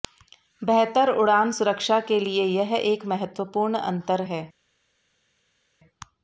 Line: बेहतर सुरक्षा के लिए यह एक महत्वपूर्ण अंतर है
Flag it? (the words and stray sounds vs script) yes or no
yes